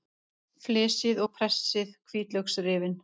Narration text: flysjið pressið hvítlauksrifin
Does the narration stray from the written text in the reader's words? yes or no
yes